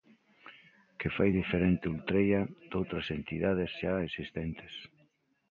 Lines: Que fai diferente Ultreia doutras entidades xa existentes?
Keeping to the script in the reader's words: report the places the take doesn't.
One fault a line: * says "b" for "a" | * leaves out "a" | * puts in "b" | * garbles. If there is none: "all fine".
all fine